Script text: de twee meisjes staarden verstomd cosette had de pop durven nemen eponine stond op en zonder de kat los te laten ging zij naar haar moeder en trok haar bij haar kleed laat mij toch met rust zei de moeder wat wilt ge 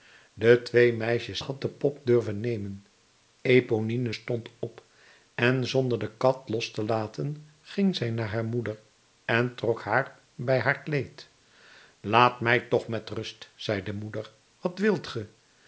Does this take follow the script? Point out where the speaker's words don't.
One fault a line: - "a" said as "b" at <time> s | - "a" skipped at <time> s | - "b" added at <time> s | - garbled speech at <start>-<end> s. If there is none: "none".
- "staarden verstomd cosette" skipped at 1.4 s